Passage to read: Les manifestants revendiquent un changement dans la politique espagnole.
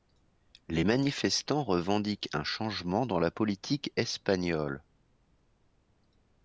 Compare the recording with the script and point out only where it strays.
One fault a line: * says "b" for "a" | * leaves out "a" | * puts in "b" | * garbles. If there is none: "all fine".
all fine